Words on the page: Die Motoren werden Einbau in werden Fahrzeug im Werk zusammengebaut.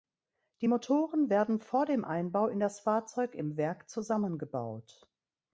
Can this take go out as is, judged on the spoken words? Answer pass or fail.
fail